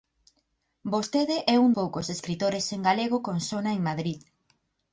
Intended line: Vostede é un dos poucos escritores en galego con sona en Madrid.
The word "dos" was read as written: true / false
false